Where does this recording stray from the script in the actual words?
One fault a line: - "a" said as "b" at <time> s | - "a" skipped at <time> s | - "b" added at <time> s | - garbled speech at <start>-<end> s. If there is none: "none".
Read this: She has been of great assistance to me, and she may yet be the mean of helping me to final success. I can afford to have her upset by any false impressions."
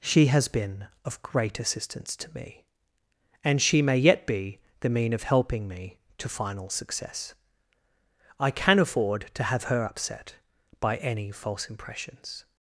none